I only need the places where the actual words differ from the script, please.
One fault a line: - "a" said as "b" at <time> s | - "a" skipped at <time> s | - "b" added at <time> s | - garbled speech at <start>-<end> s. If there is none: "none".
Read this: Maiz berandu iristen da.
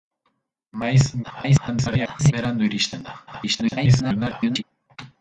- garbled speech at 1.2-2.3 s
- garbled speech at 3.3-4.6 s